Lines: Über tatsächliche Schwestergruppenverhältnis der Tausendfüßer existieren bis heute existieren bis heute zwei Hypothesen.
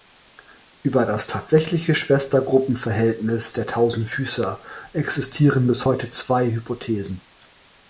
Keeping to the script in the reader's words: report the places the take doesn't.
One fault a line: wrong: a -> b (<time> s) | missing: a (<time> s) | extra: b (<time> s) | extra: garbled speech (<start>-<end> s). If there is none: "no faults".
extra: das (1.1 s)
missing: existieren bis heute (6.1 s)